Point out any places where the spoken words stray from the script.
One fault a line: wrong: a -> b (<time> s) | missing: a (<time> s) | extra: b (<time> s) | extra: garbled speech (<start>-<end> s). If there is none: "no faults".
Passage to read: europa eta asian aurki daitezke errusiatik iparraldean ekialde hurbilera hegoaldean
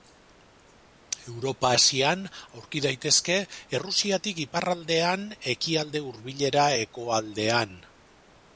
missing: eta (1.7 s)